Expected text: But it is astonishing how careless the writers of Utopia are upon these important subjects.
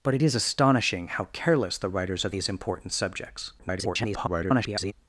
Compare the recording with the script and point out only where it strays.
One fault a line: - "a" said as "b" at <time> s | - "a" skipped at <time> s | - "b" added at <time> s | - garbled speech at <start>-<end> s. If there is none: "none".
- "Utopia are upon" skipped at 2.4 s
- garbled speech at 3.6-4.9 s